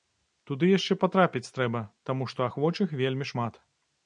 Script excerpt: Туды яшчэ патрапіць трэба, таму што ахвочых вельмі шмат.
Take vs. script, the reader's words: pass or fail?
pass